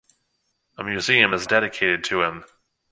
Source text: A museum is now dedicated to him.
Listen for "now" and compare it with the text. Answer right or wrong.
wrong